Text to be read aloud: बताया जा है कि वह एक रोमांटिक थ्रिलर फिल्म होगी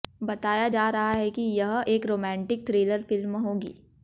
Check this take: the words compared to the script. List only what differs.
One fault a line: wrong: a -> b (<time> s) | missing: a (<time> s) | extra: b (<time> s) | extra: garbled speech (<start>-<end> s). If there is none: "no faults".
extra: रहा (0.9 s)
wrong: वह -> यह (1.4 s)